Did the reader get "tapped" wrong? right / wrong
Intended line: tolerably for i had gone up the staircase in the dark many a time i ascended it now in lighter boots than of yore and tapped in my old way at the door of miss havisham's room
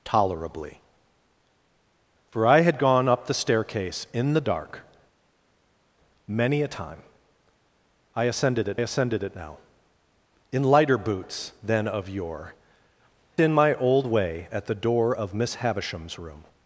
wrong